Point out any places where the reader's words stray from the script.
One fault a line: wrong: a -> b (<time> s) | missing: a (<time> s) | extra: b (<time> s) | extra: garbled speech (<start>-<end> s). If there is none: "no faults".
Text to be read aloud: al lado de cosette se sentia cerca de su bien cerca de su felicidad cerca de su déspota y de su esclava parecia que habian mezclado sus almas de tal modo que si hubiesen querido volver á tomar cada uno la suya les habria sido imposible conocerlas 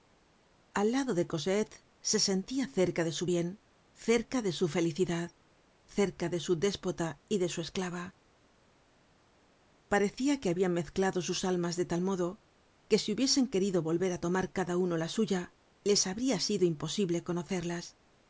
no faults